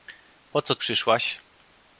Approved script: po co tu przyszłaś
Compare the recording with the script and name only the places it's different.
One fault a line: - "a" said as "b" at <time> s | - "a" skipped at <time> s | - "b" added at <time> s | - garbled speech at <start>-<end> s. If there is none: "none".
- "tu" skipped at 0.8 s